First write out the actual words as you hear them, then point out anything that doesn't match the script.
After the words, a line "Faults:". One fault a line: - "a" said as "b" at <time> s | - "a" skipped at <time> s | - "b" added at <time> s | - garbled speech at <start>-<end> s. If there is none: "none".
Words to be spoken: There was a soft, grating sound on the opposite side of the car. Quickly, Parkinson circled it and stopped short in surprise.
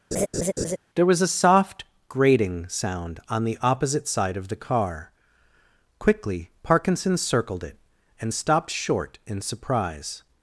There was a soft, grating sound on the opposite side of the car. Quickly, Parkinson circled it and stopped short in surprise.
Faults:
none